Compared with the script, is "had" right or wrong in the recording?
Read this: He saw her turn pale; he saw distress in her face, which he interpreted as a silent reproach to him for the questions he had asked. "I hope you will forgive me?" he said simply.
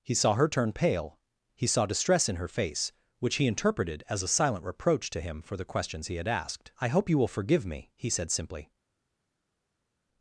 right